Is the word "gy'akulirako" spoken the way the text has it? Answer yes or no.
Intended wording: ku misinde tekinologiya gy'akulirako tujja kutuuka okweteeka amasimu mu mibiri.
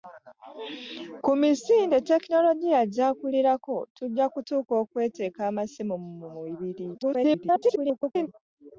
yes